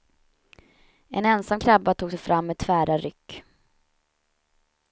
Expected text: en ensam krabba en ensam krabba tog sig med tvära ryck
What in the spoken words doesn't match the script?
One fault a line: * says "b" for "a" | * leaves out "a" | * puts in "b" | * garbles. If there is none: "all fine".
* leaves out "en ensam krabba"
* puts in "fram"